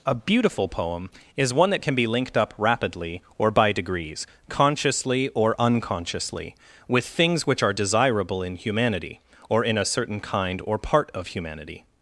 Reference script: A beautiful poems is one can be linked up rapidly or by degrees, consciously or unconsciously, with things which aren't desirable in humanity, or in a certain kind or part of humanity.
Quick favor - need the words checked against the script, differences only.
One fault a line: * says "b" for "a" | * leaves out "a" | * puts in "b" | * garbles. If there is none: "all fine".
* says "poem" for "poems"
* puts in "that"
* says "are" for "aren't"